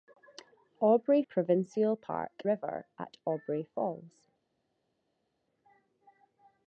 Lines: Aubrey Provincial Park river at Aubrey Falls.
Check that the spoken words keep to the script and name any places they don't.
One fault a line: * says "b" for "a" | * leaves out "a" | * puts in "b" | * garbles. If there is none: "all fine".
all fine